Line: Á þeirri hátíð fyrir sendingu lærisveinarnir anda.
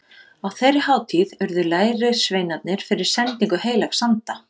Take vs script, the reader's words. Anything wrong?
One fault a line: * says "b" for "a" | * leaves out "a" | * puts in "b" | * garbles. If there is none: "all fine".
* puts in "urðu lærisveinarnir"
* says "heilags" for "lærisveinarnir"